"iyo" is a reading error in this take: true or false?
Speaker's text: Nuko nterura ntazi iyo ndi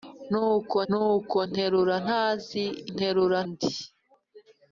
true